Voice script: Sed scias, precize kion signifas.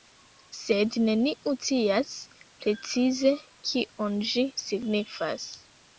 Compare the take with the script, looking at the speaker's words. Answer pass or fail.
fail